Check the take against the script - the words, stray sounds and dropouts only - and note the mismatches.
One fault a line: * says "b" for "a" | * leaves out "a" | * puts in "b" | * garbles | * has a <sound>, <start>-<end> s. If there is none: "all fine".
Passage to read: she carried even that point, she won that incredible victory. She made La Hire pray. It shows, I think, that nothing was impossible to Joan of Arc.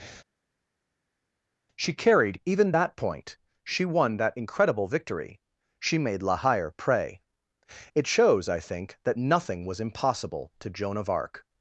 all fine